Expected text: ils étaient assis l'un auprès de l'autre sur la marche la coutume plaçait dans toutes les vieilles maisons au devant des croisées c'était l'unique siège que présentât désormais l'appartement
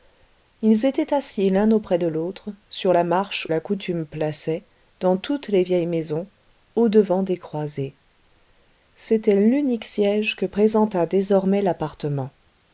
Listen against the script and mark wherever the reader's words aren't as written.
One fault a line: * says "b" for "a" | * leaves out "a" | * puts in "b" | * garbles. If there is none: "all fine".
all fine